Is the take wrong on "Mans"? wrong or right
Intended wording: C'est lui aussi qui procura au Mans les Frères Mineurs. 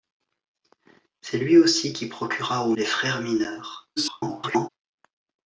wrong